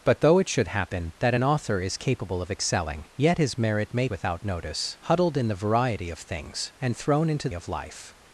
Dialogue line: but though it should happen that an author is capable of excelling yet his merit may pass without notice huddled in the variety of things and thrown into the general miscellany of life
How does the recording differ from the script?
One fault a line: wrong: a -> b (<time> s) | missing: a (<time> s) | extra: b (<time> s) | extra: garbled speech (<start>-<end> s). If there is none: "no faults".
missing: pass (4.1 s)
missing: the general miscellany (7.5 s)